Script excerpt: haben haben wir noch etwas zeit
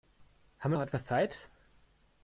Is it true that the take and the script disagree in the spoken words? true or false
true